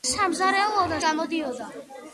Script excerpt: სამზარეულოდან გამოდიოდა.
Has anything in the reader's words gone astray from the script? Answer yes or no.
no